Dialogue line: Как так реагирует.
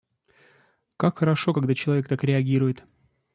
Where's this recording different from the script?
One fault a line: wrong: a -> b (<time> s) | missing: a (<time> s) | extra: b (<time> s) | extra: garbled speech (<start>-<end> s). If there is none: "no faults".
extra: хорошо когда человек (1.2 s)